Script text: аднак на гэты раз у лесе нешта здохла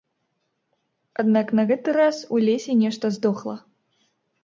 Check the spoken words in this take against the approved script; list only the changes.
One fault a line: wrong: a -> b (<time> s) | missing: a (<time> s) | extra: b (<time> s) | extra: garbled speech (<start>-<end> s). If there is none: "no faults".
no faults